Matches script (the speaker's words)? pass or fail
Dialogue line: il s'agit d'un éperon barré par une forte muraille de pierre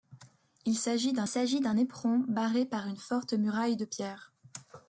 fail